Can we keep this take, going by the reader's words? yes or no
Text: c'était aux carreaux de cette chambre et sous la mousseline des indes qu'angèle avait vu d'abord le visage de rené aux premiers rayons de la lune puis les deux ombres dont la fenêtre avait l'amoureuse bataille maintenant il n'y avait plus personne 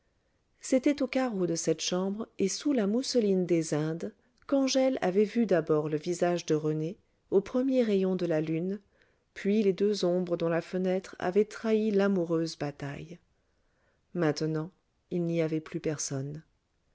no